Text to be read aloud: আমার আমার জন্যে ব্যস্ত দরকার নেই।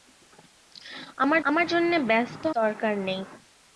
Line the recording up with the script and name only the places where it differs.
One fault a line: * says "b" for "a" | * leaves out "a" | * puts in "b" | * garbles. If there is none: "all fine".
all fine